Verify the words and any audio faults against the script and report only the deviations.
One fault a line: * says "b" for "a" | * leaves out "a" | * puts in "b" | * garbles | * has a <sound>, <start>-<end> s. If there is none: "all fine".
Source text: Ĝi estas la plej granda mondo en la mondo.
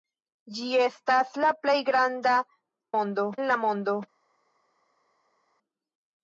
all fine